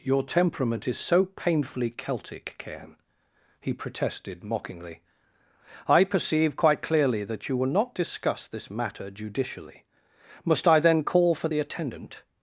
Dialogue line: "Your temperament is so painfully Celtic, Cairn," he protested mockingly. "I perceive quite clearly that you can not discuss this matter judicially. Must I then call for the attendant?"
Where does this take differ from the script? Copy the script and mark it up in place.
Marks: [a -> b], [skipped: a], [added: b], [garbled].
"Your temperament is so painfully Celtic, Cairn," he protested mockingly. "I perceive quite clearly that you [can -> will] not discuss this matter judicially. Must I then call for the attendant?"